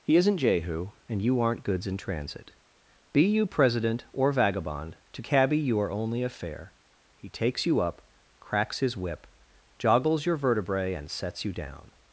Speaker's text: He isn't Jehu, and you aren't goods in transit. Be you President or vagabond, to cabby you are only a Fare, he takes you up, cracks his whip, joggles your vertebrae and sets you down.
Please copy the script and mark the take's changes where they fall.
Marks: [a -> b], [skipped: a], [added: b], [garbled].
He isn't Jehu, and you aren't goods in transit. Be you President or vagabond, to cabby you are only a Fare, he takes you up, cracks his whip, joggles your vertebrae and sets you down.